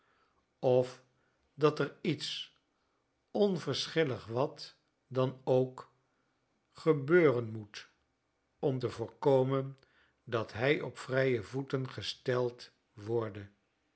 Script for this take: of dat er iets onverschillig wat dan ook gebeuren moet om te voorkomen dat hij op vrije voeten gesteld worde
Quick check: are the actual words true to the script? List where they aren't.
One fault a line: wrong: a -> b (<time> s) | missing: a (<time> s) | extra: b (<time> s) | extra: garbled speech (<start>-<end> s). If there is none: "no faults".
no faults